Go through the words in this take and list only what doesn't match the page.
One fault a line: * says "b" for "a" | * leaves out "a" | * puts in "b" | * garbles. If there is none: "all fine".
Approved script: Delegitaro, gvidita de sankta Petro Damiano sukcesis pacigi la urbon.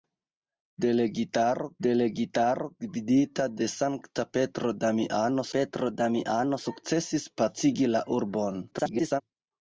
* puts in "delegitaro"
* puts in "Petro Damiano"
* garbles